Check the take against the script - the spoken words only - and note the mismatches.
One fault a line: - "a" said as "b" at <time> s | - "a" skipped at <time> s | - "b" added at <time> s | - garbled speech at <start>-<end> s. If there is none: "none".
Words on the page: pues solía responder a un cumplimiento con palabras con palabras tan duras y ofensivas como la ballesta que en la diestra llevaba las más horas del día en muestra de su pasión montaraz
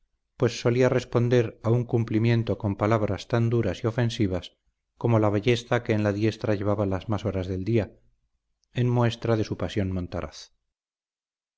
- "con palabras" skipped at 3.3 s